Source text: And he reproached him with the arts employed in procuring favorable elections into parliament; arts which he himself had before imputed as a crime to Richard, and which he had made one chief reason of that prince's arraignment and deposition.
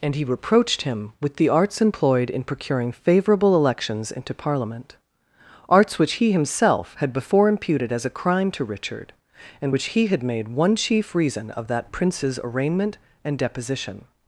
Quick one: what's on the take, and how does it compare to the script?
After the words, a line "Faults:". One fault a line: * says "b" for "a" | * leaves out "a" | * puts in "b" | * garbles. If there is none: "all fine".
And he reproached him with the arts employed in procuring favorable elections into parliament; arts which he himself had before imputed as a crime to Richard, and which he had made one chief reason of that prince's arraignment and deposition.
Faults:
all fine